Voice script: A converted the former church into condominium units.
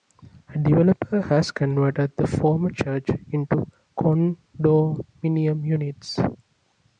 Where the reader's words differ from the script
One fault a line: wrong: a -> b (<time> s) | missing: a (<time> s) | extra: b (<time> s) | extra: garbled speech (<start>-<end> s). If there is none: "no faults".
extra: developer has (0.6 s)